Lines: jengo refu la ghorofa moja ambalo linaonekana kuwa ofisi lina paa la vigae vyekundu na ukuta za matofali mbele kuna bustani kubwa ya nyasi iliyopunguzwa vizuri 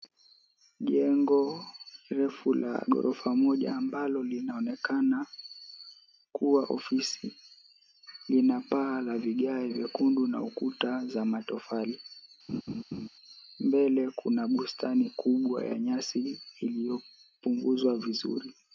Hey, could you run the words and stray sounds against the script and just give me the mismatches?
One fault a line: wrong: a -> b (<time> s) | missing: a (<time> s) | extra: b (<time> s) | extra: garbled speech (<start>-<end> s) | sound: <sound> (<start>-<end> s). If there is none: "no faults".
sound: laugh (12.5-13.1 s)